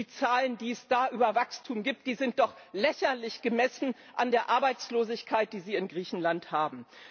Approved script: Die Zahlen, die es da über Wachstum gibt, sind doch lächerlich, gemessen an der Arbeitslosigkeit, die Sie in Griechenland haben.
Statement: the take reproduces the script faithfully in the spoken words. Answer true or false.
true